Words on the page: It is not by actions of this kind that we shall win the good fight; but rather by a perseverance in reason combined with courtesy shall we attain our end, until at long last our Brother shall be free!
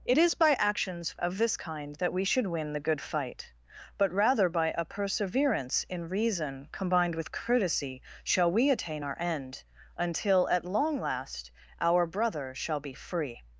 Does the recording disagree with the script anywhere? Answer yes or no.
yes